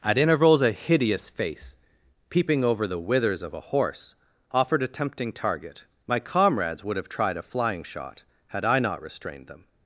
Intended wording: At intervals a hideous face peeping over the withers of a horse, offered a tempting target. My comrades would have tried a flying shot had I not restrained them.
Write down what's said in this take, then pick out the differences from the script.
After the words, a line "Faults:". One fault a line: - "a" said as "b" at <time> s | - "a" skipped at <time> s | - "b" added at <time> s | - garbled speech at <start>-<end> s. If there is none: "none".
At intervals a hideous face peeping over the withers of a horse, offered a tempting target. My comrades would have tried a flying shot had I not restrained them.
Faults:
none